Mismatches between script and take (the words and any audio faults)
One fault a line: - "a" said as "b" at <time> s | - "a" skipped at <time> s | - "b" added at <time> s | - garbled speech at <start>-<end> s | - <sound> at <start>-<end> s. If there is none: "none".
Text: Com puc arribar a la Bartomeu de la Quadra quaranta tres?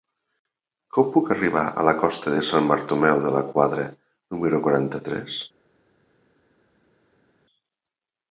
- "costa de Sant" added at 2.0 s
- "número" added at 4.4 s